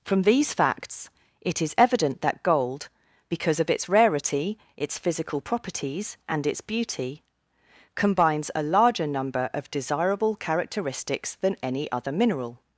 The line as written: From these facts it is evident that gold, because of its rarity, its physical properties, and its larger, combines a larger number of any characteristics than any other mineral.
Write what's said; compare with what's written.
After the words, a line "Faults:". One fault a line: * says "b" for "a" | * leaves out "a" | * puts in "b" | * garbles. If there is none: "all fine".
From these facts it is evident that gold, because of its rarity, its physical properties, and its beauty, combines a larger number of desirable characteristics than any other mineral.
Faults:
* says "beauty" for "larger"
* says "desirable" for "any"